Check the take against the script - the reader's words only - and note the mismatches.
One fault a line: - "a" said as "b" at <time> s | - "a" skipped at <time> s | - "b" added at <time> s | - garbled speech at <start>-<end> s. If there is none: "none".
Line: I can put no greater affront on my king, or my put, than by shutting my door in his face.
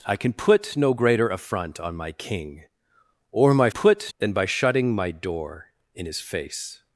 none